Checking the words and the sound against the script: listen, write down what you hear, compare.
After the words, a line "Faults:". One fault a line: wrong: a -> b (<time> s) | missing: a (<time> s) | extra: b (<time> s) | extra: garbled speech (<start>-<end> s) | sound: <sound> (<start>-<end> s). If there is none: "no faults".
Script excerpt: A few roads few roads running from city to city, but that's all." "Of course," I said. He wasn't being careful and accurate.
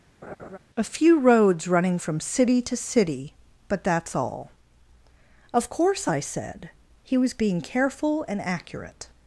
A few roads running from city to city, but that's all." "Of course," I said. He was being careful and accurate.
Faults:
sound: laugh (0.2-0.6 s)
missing: few roads (1.7 s)
wrong: wasn't -> was (7.1 s)